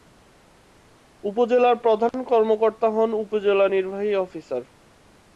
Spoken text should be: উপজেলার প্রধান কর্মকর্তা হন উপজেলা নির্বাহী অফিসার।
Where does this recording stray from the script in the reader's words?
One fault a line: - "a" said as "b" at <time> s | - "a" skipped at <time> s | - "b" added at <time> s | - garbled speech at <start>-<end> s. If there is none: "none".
none